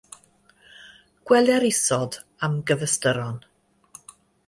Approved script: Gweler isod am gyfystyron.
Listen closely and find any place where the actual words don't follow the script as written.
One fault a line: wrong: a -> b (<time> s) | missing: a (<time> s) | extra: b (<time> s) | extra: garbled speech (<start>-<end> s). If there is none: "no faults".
no faults